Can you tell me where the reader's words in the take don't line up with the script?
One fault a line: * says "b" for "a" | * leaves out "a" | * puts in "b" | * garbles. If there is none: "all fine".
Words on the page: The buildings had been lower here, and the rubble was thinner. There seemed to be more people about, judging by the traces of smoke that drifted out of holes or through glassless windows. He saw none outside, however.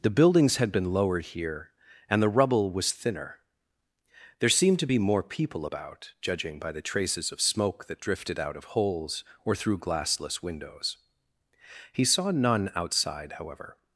* says "lowered" for "lower"